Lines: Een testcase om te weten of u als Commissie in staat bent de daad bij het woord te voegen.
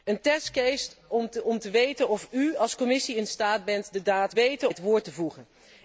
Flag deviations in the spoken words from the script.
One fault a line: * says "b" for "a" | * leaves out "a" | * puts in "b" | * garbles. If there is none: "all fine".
* says "weten" for "bij"